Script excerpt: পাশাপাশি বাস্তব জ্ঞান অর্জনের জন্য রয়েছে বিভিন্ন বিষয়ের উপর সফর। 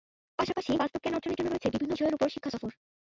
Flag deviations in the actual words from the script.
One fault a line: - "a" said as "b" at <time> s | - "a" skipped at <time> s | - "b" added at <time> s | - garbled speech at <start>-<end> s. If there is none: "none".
- "শিক্ষা" added at 2.3 s